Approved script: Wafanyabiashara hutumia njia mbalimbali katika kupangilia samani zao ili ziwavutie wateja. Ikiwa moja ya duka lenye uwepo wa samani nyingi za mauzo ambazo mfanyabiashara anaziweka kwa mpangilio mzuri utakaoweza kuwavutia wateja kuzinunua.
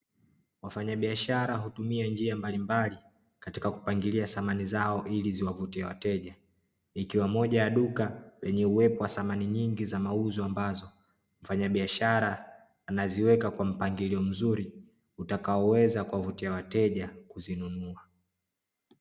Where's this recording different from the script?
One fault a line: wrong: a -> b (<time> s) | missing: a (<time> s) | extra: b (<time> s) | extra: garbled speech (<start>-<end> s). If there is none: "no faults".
no faults